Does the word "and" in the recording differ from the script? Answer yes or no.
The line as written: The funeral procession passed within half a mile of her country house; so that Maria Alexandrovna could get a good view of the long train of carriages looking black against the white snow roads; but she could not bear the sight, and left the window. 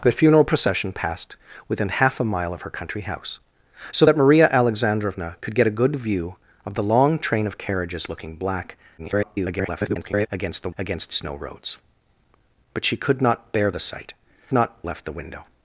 yes